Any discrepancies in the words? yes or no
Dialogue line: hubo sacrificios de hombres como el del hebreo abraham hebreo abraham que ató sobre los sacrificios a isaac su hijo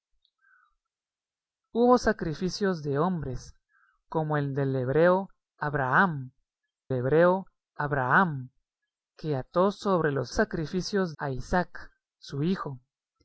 no